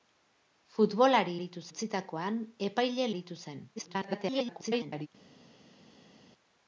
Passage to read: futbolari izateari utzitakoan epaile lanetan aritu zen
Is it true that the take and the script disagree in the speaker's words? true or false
true